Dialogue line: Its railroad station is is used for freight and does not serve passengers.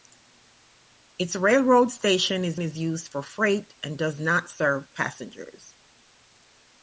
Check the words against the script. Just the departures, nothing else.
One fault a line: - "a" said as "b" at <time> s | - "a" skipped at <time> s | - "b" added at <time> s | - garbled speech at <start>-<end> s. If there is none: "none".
none